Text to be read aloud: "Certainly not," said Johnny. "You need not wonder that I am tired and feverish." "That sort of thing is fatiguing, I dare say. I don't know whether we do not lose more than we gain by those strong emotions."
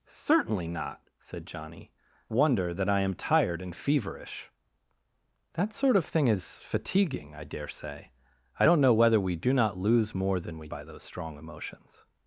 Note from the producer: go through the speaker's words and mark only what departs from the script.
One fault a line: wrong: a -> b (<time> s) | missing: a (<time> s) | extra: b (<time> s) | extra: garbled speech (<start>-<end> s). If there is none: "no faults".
missing: You need not (1.9 s)
missing: gain (10.7 s)